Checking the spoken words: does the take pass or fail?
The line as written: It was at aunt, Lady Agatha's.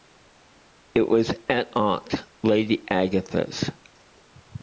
pass